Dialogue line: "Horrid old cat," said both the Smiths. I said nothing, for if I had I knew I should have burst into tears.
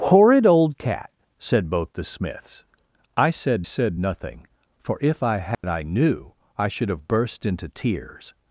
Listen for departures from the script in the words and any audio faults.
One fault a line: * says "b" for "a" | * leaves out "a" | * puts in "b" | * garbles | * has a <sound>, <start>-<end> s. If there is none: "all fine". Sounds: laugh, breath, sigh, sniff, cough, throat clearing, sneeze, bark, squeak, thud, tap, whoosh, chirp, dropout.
* puts in "said"
* has a dropout, 5.5-5.6 s